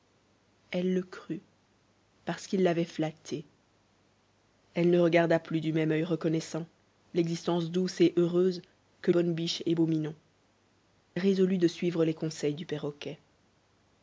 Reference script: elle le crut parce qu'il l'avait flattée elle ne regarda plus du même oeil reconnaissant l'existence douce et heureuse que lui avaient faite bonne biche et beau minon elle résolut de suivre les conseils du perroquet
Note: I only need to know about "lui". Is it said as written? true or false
false